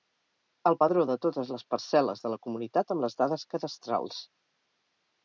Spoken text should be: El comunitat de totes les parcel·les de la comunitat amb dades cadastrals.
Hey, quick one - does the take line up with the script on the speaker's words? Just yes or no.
no